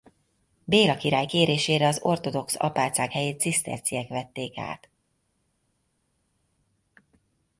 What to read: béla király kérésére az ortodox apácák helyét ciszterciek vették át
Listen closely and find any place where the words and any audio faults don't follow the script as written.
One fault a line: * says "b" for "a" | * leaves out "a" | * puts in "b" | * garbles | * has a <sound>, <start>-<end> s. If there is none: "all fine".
all fine